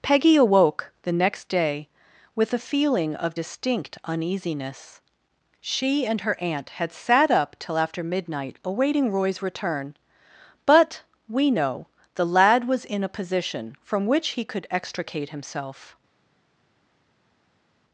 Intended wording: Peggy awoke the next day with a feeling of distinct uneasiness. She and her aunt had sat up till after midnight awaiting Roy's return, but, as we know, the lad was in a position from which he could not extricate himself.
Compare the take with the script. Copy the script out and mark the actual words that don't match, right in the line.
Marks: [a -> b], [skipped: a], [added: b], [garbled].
Peggy awoke the next day with a feeling of distinct uneasiness. She and her aunt had sat up till after midnight awaiting Roy's return, but, [skipped: as] we know, the lad was in a position from which he could [skipped: not] extricate himself.